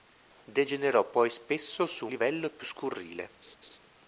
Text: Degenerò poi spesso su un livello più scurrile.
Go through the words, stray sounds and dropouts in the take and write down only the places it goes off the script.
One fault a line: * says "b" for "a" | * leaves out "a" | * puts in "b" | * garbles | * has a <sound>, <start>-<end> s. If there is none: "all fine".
* leaves out "un"
* has a laugh, 3.4-3.8 s